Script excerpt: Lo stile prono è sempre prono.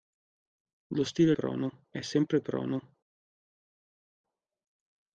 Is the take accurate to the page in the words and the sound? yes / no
yes